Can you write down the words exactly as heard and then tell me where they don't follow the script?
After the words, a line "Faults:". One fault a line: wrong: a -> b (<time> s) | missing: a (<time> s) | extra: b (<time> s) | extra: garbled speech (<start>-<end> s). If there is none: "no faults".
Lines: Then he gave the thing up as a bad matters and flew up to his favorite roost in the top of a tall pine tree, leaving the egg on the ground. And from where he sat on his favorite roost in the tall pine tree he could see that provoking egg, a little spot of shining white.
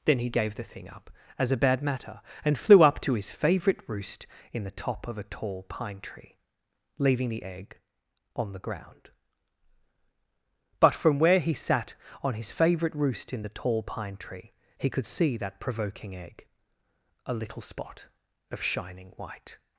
Then he gave the thing up as a bad matter and flew up to his favorite roost in the top of a tall pine tree, leaving the egg on the ground. But from where he sat on his favorite roost in the tall pine tree he could see that provoking egg, a little spot of shining white.
Faults:
wrong: matters -> matter (1.8 s)
wrong: And -> But (10.8 s)